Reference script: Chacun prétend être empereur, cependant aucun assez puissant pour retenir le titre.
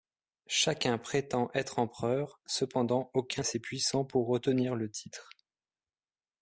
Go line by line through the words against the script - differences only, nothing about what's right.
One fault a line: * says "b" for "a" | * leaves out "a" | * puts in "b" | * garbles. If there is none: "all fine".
all fine